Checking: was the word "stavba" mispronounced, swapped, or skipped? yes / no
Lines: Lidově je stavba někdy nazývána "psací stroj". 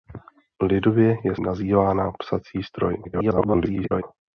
yes